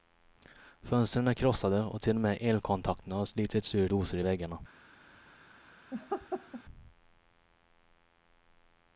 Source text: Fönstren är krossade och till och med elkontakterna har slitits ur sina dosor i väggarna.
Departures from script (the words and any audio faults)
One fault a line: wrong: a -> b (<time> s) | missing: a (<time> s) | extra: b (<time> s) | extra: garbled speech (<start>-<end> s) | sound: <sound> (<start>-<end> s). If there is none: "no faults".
missing: sina (3.9 s)
sound: laugh (5.9-6.6 s)